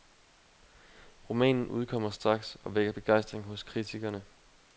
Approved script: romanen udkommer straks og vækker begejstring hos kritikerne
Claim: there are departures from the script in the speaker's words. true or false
false